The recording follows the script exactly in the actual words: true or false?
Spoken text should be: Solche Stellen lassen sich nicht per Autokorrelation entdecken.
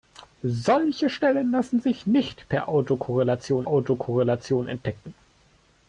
false